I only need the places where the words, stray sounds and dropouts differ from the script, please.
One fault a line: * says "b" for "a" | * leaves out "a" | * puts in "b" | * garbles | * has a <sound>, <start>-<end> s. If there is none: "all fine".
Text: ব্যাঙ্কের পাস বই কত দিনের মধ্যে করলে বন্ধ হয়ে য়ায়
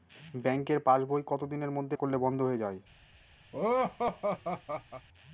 * has a laugh, 3.5-5.1 s